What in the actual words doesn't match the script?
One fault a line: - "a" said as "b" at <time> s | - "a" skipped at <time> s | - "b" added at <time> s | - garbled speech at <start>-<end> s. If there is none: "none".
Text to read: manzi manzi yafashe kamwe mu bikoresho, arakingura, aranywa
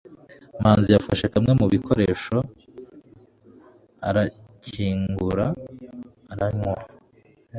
- "manzi" skipped at 0.9 s